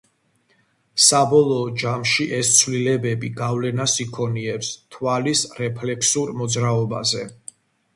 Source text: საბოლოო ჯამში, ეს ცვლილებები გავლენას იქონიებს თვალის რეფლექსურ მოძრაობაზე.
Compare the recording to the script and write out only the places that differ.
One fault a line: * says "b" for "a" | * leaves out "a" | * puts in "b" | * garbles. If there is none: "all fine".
all fine